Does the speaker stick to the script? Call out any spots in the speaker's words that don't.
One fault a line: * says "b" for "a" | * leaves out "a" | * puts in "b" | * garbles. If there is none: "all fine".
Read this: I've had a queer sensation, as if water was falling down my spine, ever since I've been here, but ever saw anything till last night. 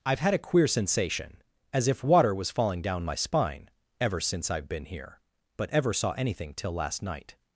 all fine